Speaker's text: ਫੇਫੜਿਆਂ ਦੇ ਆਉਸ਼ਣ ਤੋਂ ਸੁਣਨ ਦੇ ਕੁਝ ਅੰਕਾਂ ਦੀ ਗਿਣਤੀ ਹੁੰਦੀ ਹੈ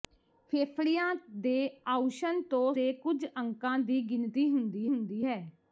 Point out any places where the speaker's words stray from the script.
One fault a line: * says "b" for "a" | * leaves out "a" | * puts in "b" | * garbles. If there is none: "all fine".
* leaves out "ਸੁਣਨ"
* puts in "ਹੁੰਦੀ"